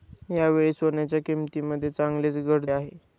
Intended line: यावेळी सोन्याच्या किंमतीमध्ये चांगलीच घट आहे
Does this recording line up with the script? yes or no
yes